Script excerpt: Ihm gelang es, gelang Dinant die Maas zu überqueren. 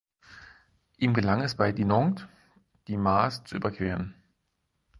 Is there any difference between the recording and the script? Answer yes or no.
yes